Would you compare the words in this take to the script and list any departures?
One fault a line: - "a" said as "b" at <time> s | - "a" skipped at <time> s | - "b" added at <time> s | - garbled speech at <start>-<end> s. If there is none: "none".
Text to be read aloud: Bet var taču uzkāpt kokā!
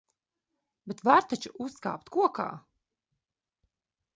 none